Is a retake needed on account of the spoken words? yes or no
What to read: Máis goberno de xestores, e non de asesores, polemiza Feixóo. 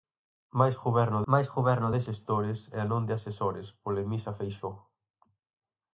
yes